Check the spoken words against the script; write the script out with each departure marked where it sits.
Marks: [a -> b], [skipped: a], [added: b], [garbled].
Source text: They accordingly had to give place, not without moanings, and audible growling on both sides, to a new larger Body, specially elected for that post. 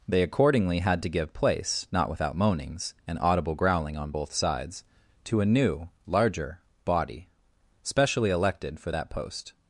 They accordingly had to give place, not without moanings, and audible growling on both sides, to a new larger Body, specially elected for that post.